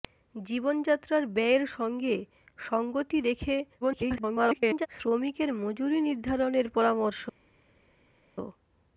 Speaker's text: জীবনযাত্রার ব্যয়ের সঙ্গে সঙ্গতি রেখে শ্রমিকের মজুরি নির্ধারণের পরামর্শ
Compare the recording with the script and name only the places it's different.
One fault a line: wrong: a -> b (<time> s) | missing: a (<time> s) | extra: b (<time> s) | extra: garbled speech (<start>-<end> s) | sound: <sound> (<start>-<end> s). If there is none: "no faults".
extra: garbled speech (3.8-4.9 s)